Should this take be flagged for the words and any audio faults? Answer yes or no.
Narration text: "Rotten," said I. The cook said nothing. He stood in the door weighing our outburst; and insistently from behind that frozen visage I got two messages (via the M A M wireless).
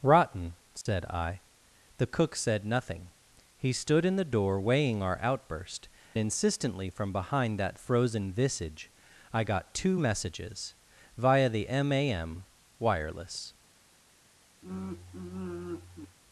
yes